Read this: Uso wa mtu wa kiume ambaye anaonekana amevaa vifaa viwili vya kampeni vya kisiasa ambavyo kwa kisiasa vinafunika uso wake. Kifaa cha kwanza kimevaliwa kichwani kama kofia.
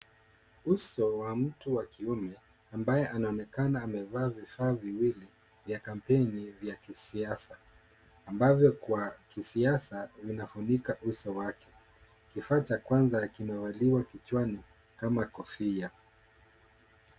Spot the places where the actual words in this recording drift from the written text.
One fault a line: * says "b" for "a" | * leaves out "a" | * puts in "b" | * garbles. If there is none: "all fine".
all fine